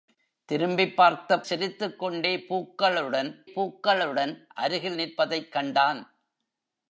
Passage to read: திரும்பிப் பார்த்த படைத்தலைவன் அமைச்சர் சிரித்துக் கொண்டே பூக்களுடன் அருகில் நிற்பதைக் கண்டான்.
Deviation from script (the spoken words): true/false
true